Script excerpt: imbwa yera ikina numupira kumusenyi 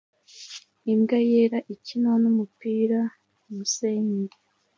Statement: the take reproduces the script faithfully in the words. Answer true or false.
true